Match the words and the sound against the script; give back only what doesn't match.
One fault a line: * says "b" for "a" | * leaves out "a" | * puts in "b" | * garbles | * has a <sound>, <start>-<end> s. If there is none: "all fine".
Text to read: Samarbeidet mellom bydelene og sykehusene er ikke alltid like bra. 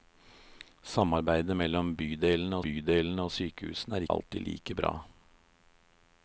* puts in "bydelene"
* leaves out "ikke"